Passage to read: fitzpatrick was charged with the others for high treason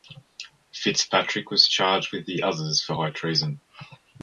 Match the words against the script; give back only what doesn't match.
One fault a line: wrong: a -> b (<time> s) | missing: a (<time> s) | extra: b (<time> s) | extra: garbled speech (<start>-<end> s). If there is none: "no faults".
no faults